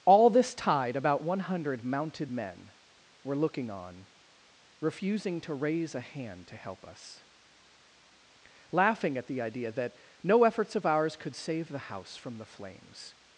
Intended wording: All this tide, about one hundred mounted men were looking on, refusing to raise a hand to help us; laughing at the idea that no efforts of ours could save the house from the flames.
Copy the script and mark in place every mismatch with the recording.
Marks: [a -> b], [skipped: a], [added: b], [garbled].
All this tide, about one hundred mounted men were looking on, refusing to raise a hand to help us; laughing at the idea that no efforts of ours could save the house from the flames.